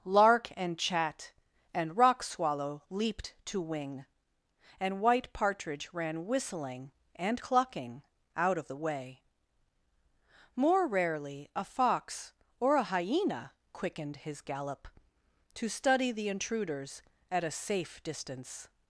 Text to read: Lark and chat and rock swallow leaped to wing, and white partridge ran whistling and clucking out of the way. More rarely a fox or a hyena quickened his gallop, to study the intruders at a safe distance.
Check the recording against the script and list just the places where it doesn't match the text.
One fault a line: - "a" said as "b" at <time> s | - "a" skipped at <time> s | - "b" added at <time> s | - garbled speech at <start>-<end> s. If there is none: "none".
none